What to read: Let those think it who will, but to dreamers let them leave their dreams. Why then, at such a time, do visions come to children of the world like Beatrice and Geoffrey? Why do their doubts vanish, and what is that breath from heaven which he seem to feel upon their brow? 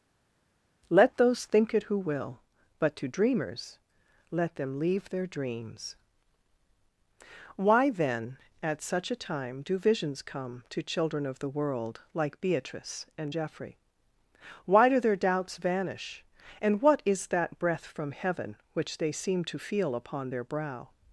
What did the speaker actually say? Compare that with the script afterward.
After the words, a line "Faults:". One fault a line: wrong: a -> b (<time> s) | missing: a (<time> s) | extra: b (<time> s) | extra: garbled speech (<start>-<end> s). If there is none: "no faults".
Let those think it who will, but to dreamers let them leave their dreams. Why then, at such a time, do visions come to children of the world like Beatrice and Geoffrey? Why do their doubts vanish, and what is that breath from heaven which they seem to feel upon their brow?
Faults:
wrong: he -> they (19.0 s)